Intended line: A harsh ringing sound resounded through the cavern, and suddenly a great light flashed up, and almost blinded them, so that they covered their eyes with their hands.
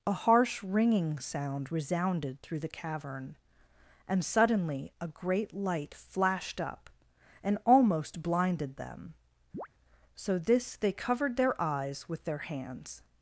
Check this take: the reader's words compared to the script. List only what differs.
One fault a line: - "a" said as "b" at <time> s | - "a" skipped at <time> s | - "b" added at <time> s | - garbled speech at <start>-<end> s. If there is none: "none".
- "that" said as "this" at 10.4 s